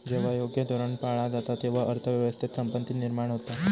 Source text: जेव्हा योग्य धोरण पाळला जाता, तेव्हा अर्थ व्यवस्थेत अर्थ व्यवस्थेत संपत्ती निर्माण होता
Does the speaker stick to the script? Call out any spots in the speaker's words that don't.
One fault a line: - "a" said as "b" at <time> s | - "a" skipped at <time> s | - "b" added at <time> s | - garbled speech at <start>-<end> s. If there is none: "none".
- "अर्थ व्यवस्थेत" skipped at 2.5 s